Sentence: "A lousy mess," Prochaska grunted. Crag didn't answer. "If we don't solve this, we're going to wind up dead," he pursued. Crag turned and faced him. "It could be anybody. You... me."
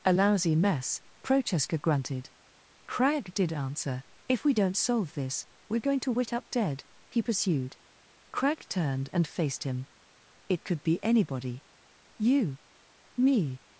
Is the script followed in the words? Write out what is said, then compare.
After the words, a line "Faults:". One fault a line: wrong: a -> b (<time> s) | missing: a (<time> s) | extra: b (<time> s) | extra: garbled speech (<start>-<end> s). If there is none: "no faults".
"A lousy mess," Prochaska grunted. Crag did answer. "If we don't solve this, we're going to wit up dead," he pursued. Crag turned and faced him. "It could be anybody. You... me."
Faults:
wrong: didn't -> did (3.3 s)
wrong: wind -> wit (6.1 s)